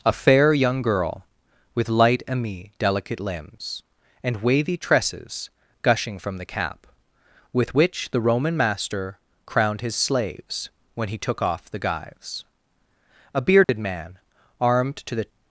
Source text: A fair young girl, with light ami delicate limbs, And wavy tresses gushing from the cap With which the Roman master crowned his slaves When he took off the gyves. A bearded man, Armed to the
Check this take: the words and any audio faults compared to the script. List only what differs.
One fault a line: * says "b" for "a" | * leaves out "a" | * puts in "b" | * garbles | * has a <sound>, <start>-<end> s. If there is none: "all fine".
* has a dropout, 13.6-13.7 s